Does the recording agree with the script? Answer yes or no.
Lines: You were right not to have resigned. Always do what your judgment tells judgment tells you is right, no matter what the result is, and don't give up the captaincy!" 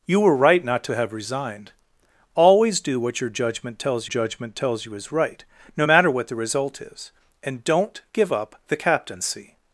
yes